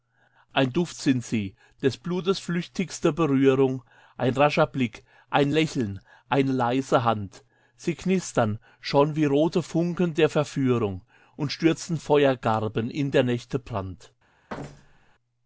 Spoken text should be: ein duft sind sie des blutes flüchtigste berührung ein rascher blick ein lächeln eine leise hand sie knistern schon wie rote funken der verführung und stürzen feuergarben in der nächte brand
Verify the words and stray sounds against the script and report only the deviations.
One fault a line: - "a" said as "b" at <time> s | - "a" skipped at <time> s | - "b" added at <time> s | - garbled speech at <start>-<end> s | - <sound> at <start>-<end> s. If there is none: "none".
- thud at 14.5-15.1 s